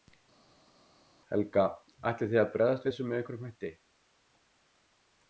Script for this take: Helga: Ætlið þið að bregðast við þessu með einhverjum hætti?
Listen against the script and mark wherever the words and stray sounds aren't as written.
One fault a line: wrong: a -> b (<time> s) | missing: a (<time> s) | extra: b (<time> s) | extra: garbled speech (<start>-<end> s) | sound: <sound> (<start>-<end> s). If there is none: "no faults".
missing: við (2.9 s)